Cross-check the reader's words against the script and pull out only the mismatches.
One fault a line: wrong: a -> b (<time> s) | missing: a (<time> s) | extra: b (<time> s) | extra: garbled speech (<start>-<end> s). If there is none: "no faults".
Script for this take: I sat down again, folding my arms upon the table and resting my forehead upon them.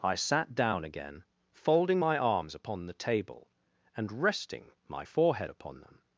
no faults